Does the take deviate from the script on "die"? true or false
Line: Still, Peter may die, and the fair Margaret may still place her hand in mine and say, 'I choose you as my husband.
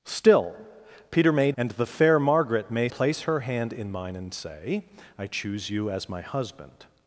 true